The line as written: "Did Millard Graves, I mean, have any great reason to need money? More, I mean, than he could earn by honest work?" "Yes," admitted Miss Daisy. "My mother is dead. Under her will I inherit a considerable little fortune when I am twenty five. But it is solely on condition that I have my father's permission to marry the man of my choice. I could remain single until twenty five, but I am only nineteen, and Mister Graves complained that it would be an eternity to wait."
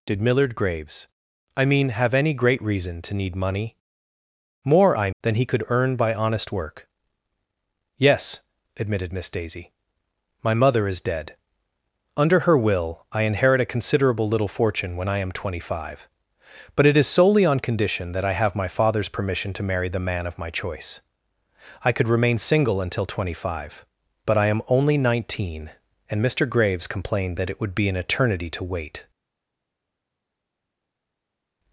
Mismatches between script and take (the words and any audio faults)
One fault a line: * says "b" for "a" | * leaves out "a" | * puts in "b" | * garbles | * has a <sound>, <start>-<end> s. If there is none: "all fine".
* leaves out "mean"